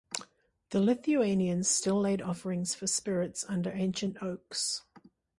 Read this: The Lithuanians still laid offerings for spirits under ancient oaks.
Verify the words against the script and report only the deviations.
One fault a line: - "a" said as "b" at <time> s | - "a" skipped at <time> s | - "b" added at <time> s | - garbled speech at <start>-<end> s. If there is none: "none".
none